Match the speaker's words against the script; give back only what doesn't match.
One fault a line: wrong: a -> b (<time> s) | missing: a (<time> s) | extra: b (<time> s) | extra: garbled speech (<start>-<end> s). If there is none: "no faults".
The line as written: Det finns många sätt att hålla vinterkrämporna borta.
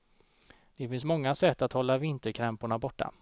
no faults